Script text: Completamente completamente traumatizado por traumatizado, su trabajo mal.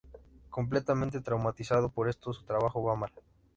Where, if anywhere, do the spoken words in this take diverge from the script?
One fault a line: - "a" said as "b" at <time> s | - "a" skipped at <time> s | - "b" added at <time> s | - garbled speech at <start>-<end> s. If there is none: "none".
- "completamente" skipped at 1.2 s
- "traumatizado" said as "esto" at 2.1 s
- "va" added at 2.8 s